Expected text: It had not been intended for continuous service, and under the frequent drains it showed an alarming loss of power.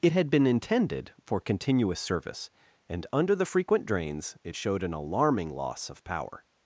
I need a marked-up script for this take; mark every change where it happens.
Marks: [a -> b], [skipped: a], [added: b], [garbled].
It had [skipped: not] been intended for continuous service, and under the frequent drains it showed an alarming loss of power.